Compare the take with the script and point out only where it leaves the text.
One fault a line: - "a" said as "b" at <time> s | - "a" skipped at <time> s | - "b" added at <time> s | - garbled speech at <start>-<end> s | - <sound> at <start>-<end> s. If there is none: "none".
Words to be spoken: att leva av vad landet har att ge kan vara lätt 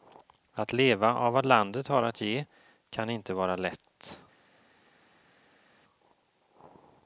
- "inte" added at 3.1 s